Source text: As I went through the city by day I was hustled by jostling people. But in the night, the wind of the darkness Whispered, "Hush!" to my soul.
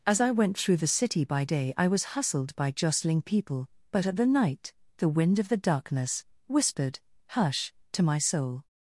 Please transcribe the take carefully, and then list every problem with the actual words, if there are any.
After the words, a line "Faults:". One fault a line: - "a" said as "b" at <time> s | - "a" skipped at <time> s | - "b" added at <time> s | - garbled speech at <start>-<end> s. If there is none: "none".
As I went through the city by day I was hustled by jostling people. But at the night, the wind of the darkness Whispered, "Hush!" to my soul.
Faults:
- "in" said as "at" at 4.1 s